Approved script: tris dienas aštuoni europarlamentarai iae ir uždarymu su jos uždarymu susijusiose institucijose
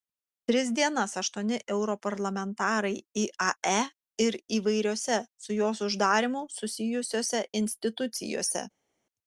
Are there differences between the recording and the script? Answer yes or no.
yes